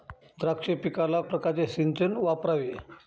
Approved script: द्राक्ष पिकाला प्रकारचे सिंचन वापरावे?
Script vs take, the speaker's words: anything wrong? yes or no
no